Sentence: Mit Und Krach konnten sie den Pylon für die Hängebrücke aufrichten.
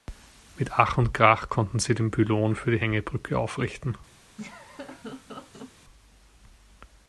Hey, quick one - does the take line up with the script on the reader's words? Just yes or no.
no